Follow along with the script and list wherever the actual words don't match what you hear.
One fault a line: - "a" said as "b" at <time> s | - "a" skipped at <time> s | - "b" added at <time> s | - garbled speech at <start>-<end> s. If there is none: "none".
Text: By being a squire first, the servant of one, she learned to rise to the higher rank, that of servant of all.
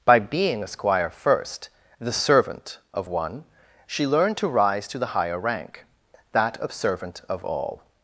none